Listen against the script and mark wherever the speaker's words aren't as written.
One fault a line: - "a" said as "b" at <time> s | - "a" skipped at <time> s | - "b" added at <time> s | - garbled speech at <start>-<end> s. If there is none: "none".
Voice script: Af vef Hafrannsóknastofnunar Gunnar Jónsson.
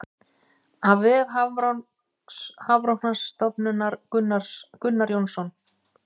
none